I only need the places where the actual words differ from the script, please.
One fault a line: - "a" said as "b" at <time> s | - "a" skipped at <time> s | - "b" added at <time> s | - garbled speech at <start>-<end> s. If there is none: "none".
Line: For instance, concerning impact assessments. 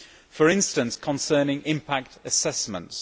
none